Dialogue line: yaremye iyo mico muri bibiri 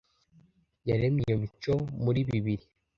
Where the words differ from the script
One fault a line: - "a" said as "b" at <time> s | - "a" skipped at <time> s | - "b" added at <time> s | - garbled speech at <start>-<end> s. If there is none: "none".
none